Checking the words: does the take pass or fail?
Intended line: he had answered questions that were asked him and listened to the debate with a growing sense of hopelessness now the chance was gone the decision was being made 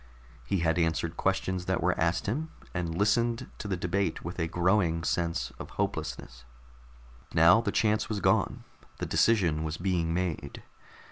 pass